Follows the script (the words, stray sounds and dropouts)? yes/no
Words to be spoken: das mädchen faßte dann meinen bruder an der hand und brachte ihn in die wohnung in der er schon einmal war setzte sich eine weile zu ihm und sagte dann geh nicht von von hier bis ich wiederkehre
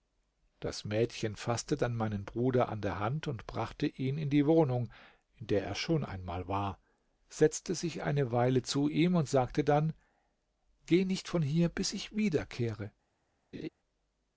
no